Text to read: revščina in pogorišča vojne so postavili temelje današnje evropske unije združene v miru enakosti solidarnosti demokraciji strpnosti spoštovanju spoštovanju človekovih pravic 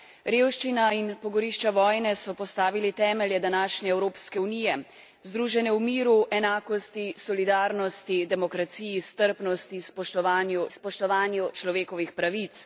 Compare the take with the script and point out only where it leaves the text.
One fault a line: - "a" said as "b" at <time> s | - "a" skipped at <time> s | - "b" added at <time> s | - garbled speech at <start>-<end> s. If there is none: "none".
none